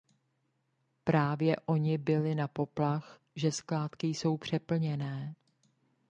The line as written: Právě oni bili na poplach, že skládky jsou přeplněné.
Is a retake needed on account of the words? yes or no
no